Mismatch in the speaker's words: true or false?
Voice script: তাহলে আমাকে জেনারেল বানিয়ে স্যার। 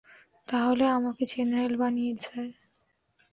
false